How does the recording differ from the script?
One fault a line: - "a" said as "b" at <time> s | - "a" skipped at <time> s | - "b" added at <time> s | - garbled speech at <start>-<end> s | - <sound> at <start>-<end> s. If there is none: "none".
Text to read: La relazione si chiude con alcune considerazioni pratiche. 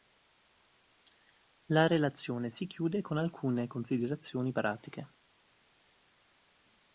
none